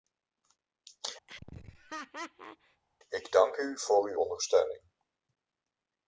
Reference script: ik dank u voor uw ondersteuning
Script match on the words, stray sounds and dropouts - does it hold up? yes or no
no